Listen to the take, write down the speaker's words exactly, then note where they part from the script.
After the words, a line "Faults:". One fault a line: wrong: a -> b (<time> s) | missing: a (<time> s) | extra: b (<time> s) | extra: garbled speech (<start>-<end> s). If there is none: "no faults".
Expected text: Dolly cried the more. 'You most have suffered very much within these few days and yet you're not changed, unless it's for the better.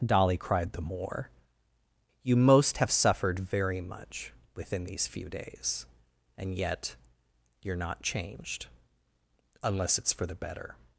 Dolly cried the more. 'You most have suffered very much within these few days and yet you're not changed, unless it's for the better.
Faults:
no faults